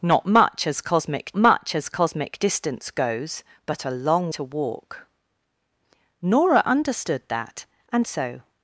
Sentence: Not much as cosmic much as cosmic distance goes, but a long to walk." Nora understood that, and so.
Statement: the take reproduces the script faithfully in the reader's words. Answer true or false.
true